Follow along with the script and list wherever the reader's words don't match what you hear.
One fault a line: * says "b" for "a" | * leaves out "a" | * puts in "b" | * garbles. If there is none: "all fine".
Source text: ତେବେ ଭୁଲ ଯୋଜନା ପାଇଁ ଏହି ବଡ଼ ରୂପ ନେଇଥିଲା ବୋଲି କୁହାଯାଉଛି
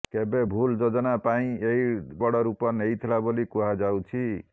all fine